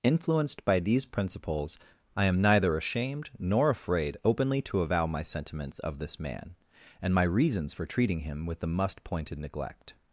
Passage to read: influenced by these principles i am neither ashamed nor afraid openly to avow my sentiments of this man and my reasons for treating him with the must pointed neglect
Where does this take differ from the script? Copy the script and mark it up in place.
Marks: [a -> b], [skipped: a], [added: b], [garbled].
influenced by these principles i am neither ashamed nor afraid openly to avow my sentiments of this man and my reasons for treating him with the must pointed neglect